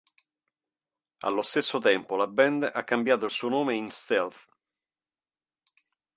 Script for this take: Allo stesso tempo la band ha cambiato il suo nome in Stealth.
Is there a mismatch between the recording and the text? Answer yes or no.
no